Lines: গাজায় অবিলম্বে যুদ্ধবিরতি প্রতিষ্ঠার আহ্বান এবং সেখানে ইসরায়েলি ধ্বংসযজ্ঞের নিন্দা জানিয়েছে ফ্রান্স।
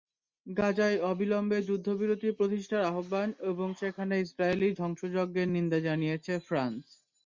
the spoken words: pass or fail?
pass